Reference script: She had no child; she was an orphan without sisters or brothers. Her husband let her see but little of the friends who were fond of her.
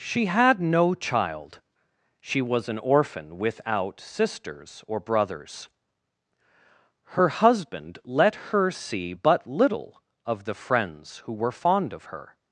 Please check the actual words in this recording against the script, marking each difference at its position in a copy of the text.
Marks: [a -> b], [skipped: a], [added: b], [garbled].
She had no child; she was an orphan without sisters or brothers. Her husband let her see but little of the friends who were fond of her.